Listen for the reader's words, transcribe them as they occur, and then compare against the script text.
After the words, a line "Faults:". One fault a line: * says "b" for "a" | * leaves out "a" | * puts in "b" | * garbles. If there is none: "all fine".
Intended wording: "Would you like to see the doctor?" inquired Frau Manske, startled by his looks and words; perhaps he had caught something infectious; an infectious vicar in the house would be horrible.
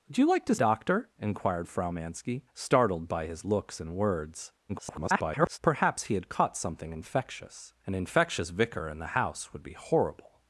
"Would you like to doctor?" inquired Frau Manske, startled by his looks and words; [garbled] perhaps he had caught something infectious; an infectious vicar in the house would be horrible.
Faults:
* leaves out "see the"
* garbles